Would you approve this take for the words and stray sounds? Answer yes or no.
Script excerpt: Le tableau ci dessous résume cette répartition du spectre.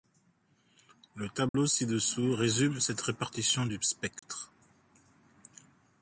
no